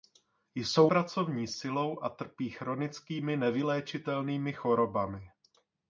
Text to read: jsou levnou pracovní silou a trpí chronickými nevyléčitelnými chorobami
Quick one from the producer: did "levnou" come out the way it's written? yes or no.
no